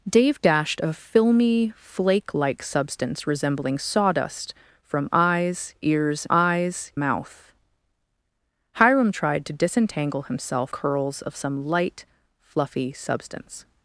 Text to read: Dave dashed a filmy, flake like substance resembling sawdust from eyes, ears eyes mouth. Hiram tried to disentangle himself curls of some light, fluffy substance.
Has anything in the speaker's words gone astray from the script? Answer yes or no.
no